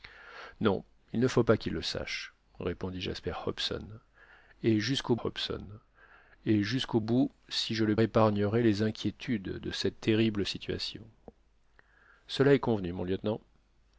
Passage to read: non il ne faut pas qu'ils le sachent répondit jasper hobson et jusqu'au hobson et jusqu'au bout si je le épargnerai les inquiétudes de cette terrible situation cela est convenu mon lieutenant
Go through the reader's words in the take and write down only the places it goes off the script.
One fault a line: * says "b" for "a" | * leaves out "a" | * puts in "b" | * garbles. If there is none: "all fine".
all fine